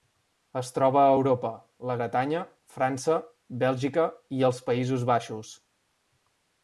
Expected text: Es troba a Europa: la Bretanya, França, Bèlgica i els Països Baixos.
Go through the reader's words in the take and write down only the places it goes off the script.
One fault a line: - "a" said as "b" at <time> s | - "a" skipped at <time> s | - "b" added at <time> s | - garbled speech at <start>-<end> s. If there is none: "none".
none